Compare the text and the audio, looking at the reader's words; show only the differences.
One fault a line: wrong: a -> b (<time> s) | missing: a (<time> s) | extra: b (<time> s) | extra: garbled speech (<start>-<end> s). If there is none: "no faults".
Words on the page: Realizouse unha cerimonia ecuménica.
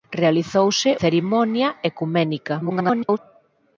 missing: unha (0.9 s)
extra: garbled speech (2.6-3.2 s)